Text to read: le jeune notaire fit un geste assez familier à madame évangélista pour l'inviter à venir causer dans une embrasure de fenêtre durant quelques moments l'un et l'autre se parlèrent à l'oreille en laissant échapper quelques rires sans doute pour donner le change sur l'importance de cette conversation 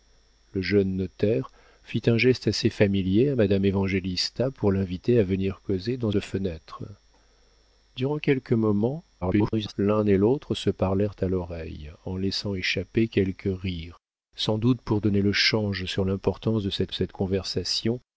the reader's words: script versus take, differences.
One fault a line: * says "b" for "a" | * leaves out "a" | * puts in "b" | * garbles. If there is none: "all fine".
* leaves out "une embrasure"
* garbles
* puts in "cette"